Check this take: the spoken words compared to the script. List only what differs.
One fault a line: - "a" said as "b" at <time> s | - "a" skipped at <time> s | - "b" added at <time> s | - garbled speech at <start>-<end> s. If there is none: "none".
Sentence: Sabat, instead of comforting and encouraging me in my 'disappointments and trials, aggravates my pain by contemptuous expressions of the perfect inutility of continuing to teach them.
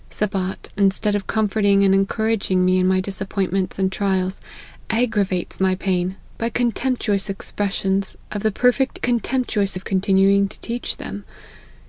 - "inutility" said as "contemptuous" at 9.0 s